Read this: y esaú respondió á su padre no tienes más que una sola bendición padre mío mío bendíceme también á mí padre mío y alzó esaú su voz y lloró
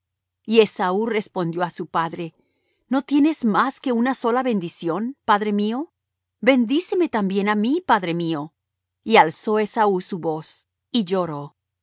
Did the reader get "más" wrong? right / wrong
right